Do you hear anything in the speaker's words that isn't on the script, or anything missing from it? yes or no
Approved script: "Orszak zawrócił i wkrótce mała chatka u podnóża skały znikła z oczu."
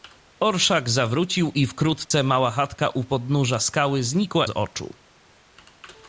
no